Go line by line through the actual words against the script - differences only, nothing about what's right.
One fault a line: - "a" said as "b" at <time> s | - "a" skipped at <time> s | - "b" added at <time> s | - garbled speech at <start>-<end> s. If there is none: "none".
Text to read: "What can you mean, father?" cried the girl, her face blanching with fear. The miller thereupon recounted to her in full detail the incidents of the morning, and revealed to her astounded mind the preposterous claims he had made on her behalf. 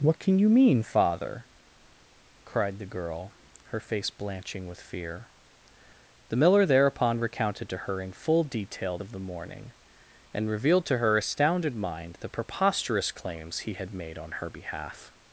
- "the incidents" skipped at 9.0 s